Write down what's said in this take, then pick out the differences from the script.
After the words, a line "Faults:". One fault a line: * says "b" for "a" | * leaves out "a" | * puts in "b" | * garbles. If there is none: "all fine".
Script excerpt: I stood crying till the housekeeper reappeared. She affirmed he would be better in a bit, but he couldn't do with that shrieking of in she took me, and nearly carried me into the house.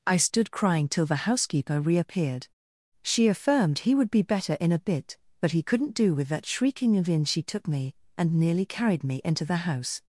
I stood crying till the housekeeper reappeared. She affirmed he would be better in a bit, but he couldn't do with that shrieking of in she took me, and nearly carried me into the house.
Faults:
all fine